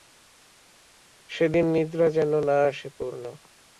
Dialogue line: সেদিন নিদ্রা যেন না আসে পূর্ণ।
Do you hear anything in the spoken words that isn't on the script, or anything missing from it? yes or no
no